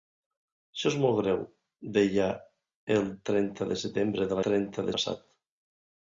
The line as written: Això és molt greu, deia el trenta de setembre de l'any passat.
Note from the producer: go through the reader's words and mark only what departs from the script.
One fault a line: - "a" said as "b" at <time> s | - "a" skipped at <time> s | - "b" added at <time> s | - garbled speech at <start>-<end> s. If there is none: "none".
- "l'any" said as "trenta" at 4.5 s